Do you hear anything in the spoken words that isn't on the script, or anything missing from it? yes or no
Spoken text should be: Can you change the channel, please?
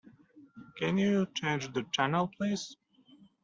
no